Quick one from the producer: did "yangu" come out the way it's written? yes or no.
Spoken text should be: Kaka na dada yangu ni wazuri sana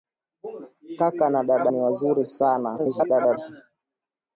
no